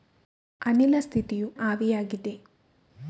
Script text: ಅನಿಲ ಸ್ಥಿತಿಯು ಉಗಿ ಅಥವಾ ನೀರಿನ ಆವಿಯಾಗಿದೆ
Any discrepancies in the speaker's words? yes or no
yes